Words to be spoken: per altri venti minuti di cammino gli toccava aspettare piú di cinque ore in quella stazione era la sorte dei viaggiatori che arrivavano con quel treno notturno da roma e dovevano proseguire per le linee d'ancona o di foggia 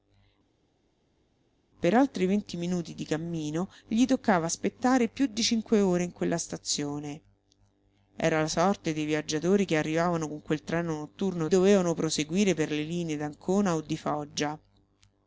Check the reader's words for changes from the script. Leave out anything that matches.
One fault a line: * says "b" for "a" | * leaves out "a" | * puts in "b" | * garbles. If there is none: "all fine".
* leaves out "da roma e"